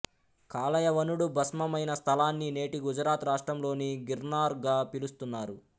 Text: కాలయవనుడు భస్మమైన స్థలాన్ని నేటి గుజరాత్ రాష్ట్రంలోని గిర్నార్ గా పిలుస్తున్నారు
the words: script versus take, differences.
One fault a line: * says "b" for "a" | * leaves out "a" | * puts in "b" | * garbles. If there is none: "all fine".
all fine